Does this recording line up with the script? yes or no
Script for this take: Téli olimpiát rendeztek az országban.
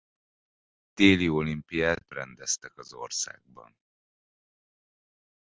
yes